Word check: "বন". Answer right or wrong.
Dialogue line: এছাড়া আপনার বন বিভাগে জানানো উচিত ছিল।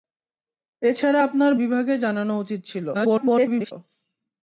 wrong